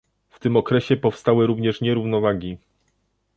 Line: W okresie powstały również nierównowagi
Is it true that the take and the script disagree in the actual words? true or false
true